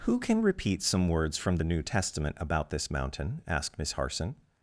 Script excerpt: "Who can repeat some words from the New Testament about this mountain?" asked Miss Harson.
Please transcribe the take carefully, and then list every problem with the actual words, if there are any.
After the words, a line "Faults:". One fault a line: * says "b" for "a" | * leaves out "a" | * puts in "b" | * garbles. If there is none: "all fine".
"Who can repeat some words from the New Testament about this mountain?" asked Miss Harson.
Faults:
all fine